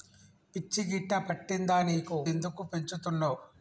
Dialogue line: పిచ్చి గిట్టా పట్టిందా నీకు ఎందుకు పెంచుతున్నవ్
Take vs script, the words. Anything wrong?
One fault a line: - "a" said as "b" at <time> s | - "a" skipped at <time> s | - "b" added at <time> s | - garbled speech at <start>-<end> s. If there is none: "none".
none